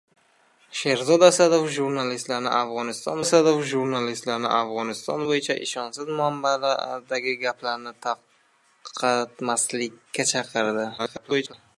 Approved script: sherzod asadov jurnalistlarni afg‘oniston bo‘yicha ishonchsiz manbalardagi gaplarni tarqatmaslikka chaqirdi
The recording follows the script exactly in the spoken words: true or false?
false